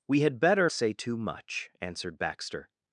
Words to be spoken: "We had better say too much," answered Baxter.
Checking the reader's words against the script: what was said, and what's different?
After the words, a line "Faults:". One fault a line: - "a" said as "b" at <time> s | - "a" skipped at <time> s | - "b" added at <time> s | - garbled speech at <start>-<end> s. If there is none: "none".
"We had better say too much," answered Baxter.
Faults:
none